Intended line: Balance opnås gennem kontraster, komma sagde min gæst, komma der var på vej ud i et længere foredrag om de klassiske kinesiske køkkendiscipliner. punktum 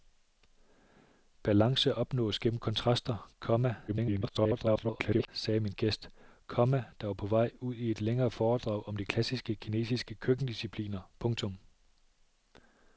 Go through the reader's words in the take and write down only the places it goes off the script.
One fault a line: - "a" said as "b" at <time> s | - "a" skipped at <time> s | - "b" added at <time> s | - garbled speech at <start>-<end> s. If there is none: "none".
- garbled speech at 3.9-5.3 s